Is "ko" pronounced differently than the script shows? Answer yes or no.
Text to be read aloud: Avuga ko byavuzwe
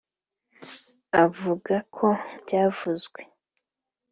no